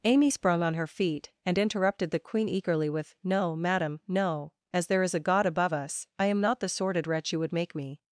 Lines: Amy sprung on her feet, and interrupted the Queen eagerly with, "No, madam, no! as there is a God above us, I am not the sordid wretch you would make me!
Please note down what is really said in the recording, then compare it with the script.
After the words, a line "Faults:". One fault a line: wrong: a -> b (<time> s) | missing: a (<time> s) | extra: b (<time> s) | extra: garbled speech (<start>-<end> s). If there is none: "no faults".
Amy sprung on her feet, and interrupted the Queen eagerly with, "No, madam, no! as there is a God above us, I am not the sordid wretch you would make me!
Faults:
no faults